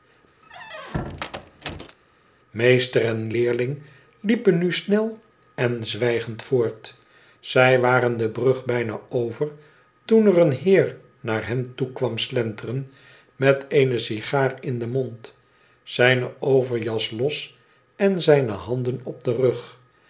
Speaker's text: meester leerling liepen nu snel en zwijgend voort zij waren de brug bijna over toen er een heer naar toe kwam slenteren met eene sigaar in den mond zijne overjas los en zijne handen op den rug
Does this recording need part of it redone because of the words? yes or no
yes